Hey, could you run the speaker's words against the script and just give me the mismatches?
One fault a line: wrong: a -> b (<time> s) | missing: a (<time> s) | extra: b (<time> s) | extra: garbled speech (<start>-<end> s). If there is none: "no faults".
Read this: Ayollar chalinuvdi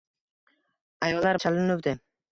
no faults